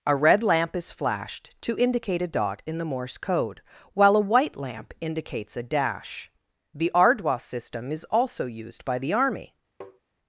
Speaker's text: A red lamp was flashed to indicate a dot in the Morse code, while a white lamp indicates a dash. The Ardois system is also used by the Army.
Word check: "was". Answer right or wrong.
wrong